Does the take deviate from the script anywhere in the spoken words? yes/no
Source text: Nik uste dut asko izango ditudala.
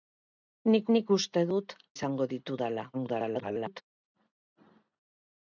yes